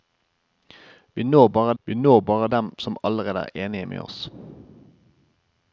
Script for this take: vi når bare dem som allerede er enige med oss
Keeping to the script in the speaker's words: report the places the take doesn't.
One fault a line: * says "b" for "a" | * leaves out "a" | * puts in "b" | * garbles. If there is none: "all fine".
* puts in "vi når bare"